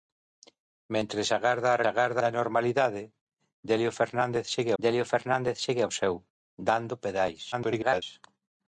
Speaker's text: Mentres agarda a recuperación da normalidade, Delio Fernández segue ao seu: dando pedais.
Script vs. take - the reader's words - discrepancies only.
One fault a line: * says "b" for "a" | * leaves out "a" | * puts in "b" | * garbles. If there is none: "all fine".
* says "agarda" for "recuperación"
* puts in "Delio Fernández segue"
* garbles